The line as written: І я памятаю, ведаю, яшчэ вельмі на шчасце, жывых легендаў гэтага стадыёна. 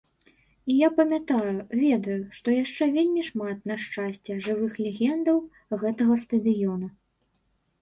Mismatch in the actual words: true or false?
true